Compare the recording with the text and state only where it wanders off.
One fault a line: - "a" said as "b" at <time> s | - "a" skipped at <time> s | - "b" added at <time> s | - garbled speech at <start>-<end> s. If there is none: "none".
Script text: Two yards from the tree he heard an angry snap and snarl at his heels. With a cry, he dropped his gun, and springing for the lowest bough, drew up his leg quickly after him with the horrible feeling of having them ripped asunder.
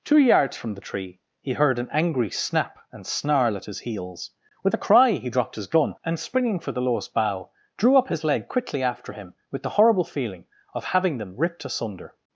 none